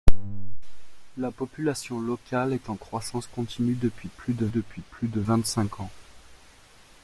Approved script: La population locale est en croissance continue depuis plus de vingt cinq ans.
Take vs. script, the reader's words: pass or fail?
fail